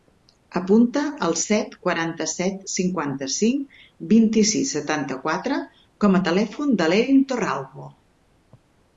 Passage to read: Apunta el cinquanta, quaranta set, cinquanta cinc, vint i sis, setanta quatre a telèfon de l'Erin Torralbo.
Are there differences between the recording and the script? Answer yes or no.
yes